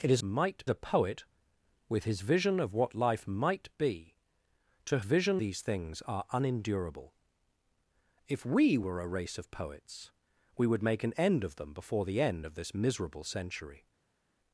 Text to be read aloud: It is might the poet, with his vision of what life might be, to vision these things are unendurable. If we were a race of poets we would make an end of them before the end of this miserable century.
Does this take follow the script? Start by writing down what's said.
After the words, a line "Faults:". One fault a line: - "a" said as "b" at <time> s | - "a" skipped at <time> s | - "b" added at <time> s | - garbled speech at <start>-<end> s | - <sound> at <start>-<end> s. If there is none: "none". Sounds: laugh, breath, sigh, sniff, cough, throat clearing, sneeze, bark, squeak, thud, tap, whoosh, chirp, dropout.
It is might the poet, with his vision of what life might be, to vision these things are unendurable. If we were a race of poets we would make an end of them before the end of this miserable century.
Faults:
none